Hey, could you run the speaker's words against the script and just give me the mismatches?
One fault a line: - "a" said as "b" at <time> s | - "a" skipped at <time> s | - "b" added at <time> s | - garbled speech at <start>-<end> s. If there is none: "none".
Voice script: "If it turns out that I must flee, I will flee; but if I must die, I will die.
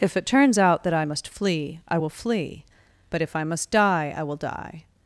none